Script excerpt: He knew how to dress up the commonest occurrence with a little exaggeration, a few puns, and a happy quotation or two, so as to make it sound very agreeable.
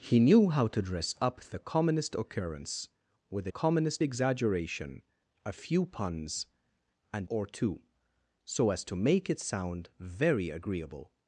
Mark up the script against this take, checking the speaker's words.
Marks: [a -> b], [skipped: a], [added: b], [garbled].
He knew how to dress up the commonest occurrence with a [little -> commonest] exaggeration, a few puns, and [skipped: a happy quotation] or two, so as to make it sound very agreeable.